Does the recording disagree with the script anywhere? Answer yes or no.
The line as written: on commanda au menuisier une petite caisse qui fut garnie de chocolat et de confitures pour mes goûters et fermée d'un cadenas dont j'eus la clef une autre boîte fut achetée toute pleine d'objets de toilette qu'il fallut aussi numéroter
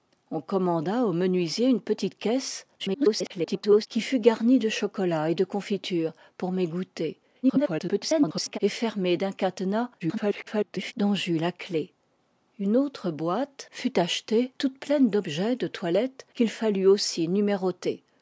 yes